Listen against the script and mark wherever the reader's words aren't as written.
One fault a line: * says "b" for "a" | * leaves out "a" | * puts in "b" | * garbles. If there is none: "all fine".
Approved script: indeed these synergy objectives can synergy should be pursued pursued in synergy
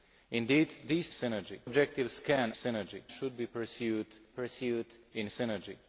all fine